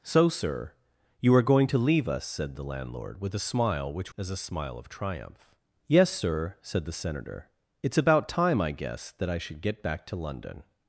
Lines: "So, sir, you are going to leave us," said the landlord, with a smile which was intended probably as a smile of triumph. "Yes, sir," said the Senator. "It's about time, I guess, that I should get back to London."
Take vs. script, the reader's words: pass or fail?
fail